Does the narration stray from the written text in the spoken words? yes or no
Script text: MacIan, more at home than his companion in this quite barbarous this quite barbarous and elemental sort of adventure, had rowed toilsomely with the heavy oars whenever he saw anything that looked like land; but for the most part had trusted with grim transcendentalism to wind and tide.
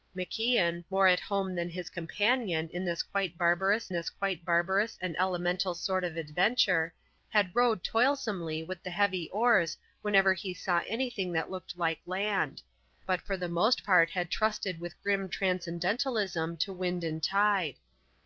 no